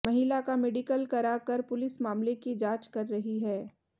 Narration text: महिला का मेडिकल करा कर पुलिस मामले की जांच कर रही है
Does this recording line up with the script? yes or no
yes